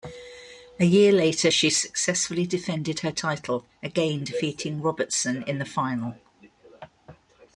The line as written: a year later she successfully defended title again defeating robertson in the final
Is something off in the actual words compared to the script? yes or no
yes